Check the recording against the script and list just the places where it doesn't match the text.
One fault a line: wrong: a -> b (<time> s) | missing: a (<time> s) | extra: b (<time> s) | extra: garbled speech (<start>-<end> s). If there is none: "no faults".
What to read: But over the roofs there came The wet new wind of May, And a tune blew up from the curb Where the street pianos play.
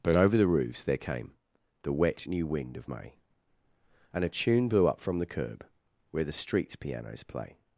wrong: street -> streets (6.3 s)